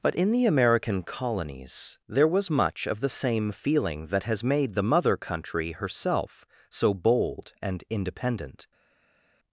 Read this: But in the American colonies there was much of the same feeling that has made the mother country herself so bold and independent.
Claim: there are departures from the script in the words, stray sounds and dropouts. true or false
false